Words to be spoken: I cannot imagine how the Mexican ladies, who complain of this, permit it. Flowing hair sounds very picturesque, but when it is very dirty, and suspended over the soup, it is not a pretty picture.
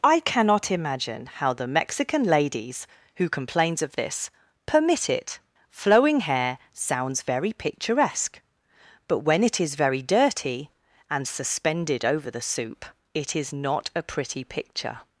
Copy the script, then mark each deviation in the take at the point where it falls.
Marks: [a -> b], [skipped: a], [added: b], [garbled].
I cannot imagine how the Mexican ladies, who [complain -> complains] of this, permit it. Flowing hair sounds very picturesque, but when it is very dirty, and suspended over the soup, it is not a pretty picture.